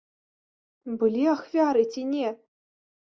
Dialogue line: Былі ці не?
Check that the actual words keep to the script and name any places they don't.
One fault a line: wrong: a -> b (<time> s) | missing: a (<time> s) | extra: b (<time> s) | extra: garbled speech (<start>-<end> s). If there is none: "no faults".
extra: ахвяры (1.3 s)